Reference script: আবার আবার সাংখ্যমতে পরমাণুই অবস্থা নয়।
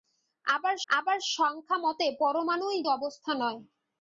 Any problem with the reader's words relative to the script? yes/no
no